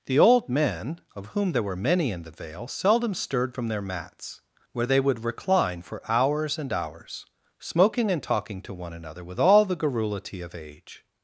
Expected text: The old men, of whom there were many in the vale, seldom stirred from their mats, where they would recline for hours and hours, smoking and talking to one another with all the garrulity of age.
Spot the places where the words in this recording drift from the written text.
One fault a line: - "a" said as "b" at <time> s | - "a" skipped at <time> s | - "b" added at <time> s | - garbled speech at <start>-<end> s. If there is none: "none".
none